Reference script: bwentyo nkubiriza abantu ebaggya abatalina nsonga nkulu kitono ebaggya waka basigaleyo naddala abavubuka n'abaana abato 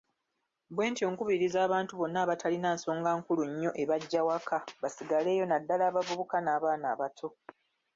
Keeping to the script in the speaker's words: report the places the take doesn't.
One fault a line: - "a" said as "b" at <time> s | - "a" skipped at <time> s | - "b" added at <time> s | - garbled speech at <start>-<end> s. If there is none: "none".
- "ebaggya" said as "bonna" at 2.0 s
- "kitono" said as "nnyo" at 3.5 s